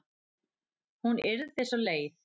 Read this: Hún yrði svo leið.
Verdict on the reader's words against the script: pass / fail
pass